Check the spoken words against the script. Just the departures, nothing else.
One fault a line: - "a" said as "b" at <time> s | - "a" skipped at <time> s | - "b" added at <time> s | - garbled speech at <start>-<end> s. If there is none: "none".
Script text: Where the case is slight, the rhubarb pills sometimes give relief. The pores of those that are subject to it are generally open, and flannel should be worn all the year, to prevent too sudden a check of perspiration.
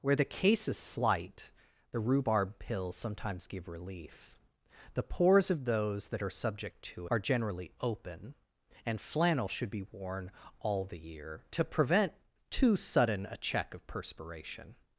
- "it" skipped at 7.1 s